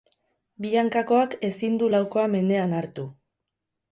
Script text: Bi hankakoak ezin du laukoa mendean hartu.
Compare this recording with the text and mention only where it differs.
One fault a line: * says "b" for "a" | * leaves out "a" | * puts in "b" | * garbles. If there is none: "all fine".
all fine